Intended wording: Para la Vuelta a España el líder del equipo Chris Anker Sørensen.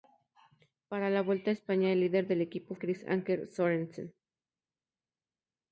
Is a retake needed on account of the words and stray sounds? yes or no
no